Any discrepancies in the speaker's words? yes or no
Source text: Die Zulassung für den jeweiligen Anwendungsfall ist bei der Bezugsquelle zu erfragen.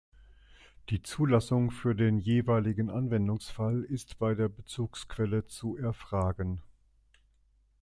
no